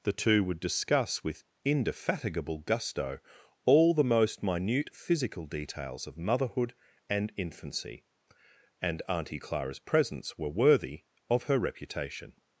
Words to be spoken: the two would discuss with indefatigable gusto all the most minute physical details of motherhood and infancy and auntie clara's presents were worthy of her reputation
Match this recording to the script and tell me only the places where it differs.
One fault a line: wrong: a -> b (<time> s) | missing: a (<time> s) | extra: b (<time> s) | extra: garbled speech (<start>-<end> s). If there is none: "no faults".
no faults